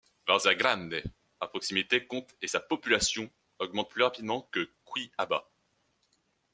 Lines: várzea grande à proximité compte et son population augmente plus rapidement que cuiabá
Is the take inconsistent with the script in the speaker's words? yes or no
yes